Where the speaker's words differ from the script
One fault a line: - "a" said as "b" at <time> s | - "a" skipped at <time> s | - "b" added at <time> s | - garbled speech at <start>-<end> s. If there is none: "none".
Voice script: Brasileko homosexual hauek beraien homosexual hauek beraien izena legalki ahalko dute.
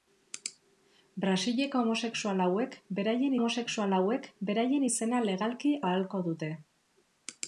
none